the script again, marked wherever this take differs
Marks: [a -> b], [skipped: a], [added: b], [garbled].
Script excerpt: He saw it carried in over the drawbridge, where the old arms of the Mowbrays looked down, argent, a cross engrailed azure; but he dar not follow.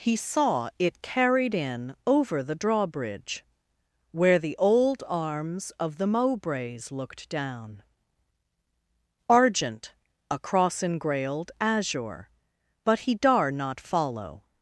He saw it carried in over the drawbridge, where the old arms of the Mowbrays looked down, argent, a cross engrailed azure; but he dar not follow.